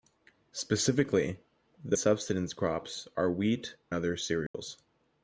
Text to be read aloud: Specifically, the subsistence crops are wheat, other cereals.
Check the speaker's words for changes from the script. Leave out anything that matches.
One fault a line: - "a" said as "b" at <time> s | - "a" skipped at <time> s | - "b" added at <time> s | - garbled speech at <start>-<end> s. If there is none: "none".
none